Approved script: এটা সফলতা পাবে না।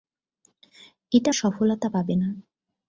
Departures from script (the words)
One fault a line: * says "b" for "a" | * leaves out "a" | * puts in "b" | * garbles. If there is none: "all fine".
all fine